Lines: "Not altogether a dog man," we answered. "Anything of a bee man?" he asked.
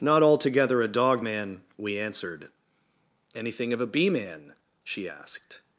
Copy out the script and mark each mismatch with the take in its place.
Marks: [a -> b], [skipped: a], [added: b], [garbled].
"Not altogether a dog man," we answered. "Anything of a bee man?" [he -> she] asked.